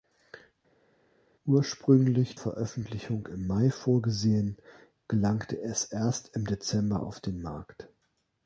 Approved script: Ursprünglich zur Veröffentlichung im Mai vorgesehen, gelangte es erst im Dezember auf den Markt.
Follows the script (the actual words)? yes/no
no